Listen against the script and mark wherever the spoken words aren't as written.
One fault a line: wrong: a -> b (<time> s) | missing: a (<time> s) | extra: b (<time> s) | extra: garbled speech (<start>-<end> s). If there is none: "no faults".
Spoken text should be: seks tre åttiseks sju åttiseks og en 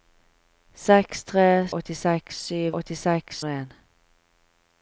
no faults